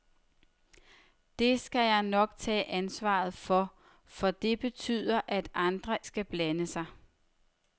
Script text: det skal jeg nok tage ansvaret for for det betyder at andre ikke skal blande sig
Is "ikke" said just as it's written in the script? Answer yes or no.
no